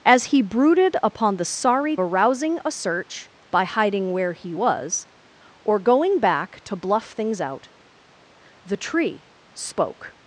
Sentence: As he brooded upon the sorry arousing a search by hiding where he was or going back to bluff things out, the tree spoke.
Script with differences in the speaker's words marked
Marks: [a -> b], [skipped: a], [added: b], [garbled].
As he brooded upon the sorry arousing a search by hiding where he was or going back to bluff things out, the tree spoke.